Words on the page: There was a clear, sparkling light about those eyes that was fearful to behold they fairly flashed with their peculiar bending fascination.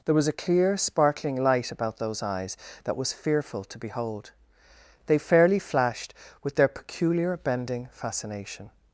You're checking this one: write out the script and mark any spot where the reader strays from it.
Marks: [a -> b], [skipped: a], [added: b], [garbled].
There was a clear, sparkling light about those eyes that was fearful to behold they fairly flashed with their peculiar bending fascination.